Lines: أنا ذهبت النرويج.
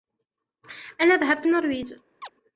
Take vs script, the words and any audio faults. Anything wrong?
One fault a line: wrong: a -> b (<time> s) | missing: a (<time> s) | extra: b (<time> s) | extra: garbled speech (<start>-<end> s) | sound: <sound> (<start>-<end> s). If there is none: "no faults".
sound: chirp (2.2-2.3 s)